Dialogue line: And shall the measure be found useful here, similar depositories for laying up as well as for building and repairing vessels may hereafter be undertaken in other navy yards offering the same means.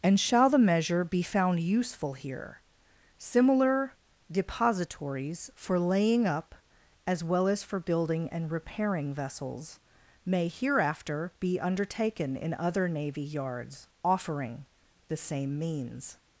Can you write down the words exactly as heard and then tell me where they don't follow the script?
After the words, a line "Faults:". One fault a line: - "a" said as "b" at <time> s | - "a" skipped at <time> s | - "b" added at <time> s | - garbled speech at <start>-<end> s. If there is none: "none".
And shall the measure be found useful here, similar depositories for laying up as well as for building and repairing vessels may hereafter be undertaken in other navy yards offering the same means.
Faults:
none